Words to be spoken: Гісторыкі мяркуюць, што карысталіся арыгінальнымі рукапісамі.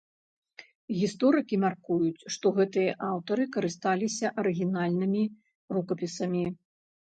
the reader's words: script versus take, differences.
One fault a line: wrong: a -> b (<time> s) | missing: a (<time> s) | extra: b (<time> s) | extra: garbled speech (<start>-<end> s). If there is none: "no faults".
extra: гэтыя аўтары (2.6 s)